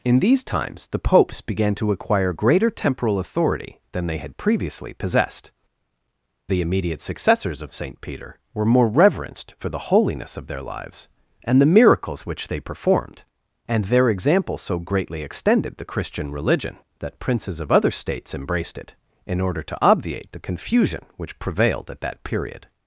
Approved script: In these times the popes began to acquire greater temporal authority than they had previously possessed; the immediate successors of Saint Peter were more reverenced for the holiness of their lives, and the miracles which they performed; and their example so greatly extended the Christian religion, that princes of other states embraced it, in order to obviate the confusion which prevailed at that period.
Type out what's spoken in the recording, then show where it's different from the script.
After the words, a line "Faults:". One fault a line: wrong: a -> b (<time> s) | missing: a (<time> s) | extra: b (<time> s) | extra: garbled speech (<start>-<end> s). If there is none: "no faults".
In these times the popes began to acquire greater temporal authority than they had previously possessed; the immediate successors of Saint Peter were more reverenced for the holiness of their lives, and the miracles which they performed; and their example so greatly extended the Christian religion, that princes of other states embraced it, in order to obviate the confusion which prevailed at that period.
Faults:
no faults